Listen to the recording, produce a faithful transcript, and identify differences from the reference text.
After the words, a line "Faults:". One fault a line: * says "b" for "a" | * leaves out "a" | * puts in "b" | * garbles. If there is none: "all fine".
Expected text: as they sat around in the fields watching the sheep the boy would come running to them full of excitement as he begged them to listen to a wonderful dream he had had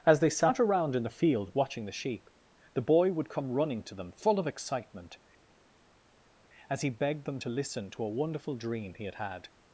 as they sat around in the field watching the sheep the boy would come running to them full of excitement as he begged them to listen to a wonderful dream he had had
Faults:
* says "field" for "fields"